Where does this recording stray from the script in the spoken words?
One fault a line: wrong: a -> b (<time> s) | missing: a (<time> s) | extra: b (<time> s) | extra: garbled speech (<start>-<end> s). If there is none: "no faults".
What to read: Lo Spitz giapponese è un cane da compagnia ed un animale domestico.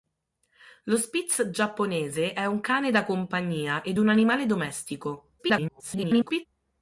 extra: garbled speech (5.4-6.5 s)